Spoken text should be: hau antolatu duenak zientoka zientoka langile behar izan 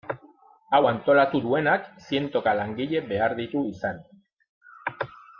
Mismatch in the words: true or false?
true